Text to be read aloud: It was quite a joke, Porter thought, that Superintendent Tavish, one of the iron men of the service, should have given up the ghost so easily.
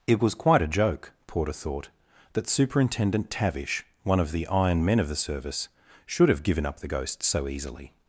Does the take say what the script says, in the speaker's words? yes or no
yes